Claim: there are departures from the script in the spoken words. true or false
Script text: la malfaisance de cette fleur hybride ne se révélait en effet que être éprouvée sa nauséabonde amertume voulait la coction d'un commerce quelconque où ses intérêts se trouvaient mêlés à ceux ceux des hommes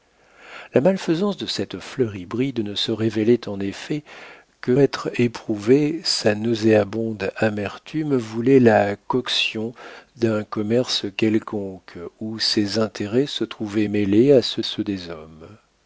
false